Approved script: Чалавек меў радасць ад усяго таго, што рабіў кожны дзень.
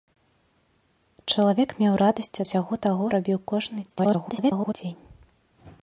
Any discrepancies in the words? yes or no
yes